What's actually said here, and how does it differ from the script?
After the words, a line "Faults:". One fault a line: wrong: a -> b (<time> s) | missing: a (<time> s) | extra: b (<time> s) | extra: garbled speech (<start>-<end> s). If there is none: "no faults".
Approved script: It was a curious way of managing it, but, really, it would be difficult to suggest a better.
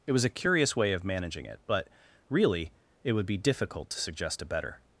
It was a curious way of managing it, but, really, it would be difficult to suggest a better.
Faults:
no faults